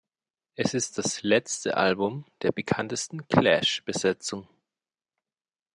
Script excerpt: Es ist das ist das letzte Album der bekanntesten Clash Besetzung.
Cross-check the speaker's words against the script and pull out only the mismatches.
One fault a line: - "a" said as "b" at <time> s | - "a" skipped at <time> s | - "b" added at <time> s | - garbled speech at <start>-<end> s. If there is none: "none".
- "ist das" skipped at 1.2 s